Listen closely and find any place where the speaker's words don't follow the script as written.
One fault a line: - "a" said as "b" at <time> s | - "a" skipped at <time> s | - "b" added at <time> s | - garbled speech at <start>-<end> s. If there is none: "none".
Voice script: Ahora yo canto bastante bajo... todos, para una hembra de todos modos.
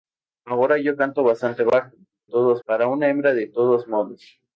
none